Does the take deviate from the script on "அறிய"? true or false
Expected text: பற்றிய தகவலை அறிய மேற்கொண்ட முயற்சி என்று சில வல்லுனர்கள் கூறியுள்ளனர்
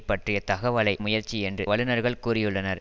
true